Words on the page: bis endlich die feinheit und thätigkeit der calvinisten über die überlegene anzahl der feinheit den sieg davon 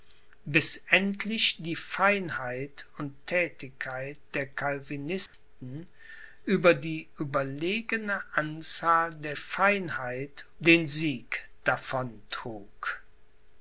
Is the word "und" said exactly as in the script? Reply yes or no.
yes